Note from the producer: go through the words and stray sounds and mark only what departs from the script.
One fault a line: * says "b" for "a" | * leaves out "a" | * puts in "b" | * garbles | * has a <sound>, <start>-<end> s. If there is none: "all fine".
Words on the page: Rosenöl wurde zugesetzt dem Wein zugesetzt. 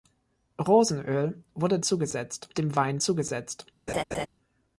* has a laugh, 3.9-4.3 s